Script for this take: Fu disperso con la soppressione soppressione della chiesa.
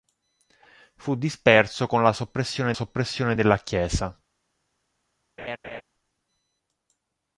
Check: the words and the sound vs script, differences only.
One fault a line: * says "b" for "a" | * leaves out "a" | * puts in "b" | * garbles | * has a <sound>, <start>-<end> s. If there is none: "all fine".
* has a laugh, 5.4-5.8 s